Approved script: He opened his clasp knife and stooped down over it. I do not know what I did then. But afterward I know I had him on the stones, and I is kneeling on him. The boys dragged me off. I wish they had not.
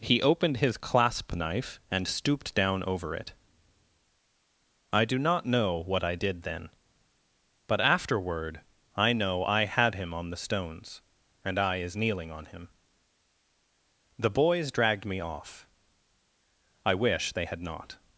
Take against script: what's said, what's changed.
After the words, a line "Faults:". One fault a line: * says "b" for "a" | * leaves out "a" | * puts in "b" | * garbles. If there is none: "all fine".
He opened his clasp knife and stooped down over it. I do not know what I did then. But afterward I know I had him on the stones, and I is kneeling on him. The boys dragged me off. I wish they had not.
Faults:
all fine